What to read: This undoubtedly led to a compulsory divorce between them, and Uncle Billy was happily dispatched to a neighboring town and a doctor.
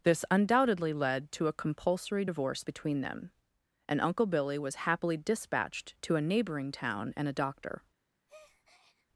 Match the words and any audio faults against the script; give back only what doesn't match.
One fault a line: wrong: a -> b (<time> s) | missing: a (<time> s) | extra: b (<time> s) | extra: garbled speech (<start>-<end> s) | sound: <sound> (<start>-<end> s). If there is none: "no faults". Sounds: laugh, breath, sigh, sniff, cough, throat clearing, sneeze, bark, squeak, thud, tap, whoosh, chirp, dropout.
sound: breath (8.3-9.1 s)